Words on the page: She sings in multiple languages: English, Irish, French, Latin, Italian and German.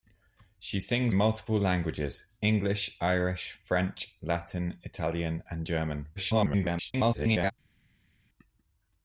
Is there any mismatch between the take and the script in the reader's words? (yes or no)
yes